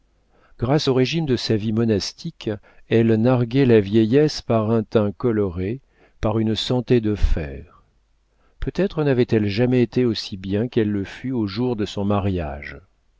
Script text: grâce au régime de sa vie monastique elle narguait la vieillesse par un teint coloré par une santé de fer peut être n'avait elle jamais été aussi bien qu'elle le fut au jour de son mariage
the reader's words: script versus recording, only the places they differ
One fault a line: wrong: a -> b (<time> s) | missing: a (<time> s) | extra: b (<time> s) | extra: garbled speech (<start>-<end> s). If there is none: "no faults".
no faults